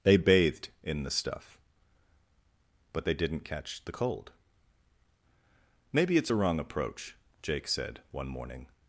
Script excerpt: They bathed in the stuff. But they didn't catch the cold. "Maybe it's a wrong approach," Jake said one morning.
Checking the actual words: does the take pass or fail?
pass